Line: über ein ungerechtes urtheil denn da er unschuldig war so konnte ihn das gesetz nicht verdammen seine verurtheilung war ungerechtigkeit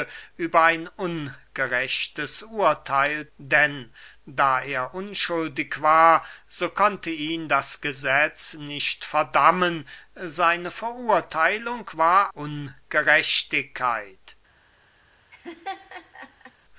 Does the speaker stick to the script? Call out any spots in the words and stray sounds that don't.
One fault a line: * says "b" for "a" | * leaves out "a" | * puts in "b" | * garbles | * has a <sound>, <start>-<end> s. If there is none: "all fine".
* has a laugh, 15.3-16.5 s